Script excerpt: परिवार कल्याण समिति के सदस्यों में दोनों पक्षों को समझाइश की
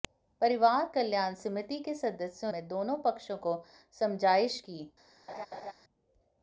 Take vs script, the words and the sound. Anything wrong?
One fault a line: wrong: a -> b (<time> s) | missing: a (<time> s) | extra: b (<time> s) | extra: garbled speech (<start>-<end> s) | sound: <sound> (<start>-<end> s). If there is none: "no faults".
sound: laugh (5.3-5.7 s)